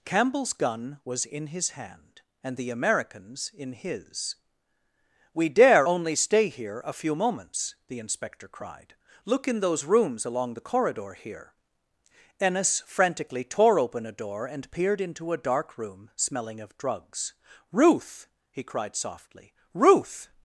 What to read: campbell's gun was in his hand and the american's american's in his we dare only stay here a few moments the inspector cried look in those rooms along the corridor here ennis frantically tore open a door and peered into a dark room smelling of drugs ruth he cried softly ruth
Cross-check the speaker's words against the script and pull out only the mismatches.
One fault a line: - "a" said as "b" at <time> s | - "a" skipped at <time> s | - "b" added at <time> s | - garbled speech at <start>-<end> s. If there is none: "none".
- "american's" skipped at 3.5 s